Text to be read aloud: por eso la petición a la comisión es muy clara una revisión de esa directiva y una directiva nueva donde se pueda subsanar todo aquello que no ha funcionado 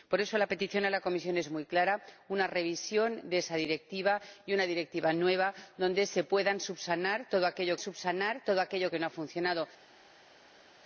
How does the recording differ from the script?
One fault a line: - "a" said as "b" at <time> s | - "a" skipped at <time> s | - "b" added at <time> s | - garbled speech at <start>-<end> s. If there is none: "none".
- "subsanar todo aquello" added at 7.8 s